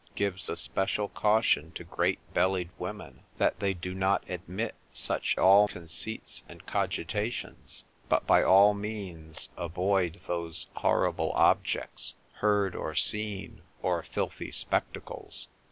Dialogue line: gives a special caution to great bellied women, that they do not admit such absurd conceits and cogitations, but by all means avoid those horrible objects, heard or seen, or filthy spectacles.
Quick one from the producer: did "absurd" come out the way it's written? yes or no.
no